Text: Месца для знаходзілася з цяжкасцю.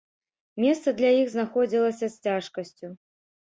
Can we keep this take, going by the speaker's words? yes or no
no